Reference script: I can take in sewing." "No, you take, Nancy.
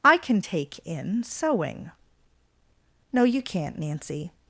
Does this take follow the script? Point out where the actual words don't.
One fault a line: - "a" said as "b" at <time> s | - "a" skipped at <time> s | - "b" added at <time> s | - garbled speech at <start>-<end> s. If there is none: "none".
- "take" said as "can't" at 3.4 s